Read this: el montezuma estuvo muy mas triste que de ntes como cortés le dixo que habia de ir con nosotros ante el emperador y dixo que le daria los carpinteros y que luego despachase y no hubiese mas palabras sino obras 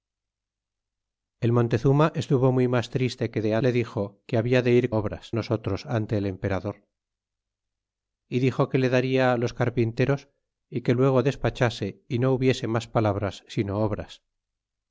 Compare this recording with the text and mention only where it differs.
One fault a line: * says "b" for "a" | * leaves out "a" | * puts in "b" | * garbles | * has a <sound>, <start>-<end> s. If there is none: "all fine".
* leaves out "ntes como cortés"
* says "obras" for "con"